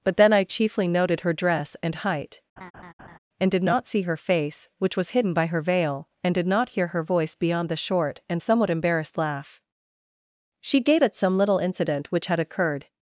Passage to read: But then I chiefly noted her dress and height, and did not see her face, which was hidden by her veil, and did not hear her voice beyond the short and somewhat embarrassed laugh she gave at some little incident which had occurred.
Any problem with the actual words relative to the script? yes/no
no